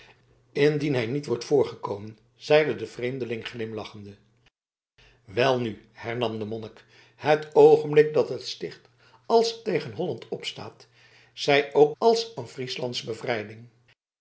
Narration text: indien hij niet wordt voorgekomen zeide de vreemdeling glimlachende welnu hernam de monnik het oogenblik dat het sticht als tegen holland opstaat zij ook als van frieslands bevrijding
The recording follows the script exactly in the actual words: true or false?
true